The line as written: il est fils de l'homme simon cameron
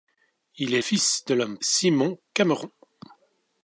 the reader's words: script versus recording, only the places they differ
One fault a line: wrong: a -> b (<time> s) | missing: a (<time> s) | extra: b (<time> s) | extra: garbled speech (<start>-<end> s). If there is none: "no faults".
no faults